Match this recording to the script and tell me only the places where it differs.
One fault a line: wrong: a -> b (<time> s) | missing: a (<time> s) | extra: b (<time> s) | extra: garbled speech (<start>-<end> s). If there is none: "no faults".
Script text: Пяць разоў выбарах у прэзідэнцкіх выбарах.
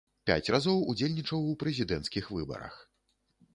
wrong: выбарах -> удзельнічаў (0.9 s)